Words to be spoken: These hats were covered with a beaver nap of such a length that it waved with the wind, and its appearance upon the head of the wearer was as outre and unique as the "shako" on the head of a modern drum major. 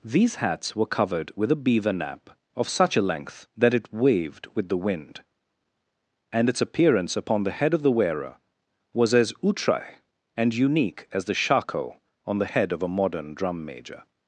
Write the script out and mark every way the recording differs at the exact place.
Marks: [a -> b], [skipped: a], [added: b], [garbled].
These hats were covered with a beaver nap of such a length that it waved with the wind, and its appearance upon the head of the wearer was as outre and unique as the "shako" on the head of a modern drum major.